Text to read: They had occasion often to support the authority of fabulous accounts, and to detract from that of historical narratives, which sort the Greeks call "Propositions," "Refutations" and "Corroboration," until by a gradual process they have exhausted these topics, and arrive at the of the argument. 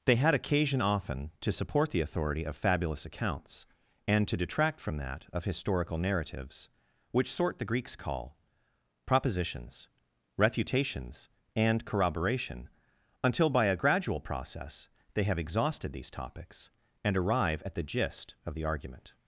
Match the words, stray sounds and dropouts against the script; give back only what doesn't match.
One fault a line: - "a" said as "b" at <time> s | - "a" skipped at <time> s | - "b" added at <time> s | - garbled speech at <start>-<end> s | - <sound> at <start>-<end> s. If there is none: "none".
- "gist" added at 17.8 s